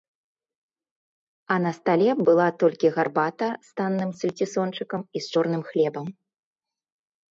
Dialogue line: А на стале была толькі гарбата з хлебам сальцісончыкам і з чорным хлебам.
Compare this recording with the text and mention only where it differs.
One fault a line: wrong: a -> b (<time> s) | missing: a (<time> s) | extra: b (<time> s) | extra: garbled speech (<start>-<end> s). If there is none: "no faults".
wrong: хлебам -> танным (3.8 s)